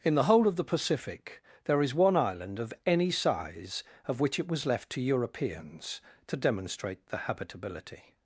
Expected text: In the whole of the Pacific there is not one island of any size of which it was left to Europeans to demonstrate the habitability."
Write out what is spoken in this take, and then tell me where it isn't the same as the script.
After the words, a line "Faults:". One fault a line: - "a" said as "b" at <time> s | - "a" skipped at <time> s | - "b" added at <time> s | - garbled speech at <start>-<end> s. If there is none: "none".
In the whole of the Pacific there is one island of any size of which it was left to Europeans to demonstrate the habitability."
Faults:
- "not" skipped at 1.9 s